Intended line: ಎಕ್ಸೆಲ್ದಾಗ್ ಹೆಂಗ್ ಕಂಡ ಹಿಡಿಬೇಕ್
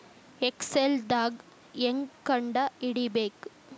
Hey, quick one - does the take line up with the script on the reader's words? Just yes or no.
yes